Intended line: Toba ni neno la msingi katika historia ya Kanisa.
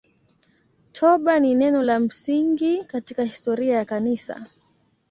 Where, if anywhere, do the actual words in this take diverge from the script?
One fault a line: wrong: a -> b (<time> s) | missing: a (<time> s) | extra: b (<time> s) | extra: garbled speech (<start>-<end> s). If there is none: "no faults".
no faults